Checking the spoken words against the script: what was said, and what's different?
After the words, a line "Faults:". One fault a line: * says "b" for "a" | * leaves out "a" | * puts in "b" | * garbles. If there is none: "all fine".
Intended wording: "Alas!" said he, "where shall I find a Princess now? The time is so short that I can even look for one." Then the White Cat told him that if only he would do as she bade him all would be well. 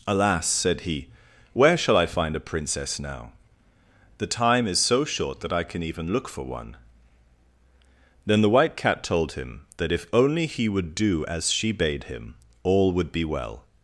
"Alas!" said he, "where shall I find a Princess now? The time is so short that I can even look for one." Then the White Cat told him that if only he would do as she bade him all would be well.
Faults:
all fine